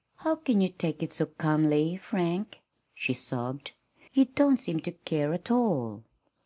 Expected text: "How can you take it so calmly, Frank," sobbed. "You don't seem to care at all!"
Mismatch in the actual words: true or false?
true